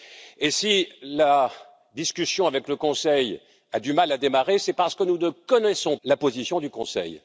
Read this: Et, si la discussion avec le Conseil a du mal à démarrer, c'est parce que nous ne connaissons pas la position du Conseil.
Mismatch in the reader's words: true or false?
true